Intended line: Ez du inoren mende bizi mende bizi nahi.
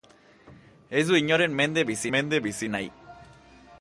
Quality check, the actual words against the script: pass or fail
pass